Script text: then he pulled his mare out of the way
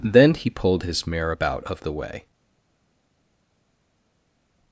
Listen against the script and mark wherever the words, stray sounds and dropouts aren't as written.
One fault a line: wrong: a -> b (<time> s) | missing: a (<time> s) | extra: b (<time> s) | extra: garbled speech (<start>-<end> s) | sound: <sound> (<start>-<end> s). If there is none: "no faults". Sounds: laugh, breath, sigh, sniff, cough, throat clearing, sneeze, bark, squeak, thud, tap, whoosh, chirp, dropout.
wrong: out -> about (1.3 s)